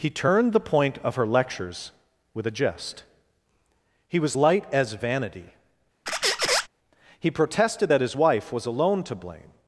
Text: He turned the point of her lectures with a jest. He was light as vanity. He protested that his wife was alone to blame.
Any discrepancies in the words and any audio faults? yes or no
yes